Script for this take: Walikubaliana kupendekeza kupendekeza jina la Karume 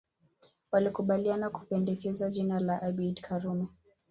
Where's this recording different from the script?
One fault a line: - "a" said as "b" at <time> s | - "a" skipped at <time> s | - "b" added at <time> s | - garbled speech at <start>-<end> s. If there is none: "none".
- "kupendekeza" skipped at 2.3 s
- "Abeid" added at 2.8 s